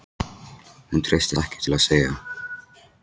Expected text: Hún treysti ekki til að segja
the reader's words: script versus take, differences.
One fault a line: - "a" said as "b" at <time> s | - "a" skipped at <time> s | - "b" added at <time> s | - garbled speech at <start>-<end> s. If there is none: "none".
none